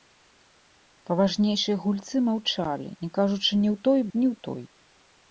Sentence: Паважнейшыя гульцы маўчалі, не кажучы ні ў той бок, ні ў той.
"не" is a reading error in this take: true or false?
false